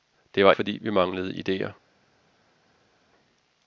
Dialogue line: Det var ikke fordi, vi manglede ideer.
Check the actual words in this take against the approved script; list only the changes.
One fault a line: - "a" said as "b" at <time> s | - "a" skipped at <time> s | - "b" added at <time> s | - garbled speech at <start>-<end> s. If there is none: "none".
- "ikke" skipped at 0.5 s